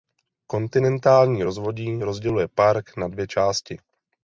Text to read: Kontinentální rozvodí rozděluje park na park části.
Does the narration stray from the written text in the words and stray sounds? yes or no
yes